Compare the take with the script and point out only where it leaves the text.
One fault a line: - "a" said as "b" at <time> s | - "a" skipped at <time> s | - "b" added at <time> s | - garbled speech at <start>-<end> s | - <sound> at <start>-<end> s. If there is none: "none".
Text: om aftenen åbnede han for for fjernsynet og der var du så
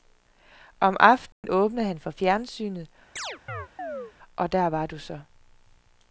- dropout at 1.3-1.4 s
- "for" skipped at 2.1 s
- chirp at 3.2-4.1 s